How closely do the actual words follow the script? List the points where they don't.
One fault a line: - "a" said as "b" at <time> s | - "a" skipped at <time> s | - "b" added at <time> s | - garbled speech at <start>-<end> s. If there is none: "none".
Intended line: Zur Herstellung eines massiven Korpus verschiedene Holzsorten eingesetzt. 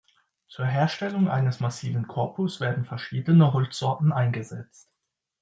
- "werden" added at 2.6 s